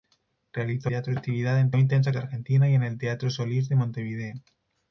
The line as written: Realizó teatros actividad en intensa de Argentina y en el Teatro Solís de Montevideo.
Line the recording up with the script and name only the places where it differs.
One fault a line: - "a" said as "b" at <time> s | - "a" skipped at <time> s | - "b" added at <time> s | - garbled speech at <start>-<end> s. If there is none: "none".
none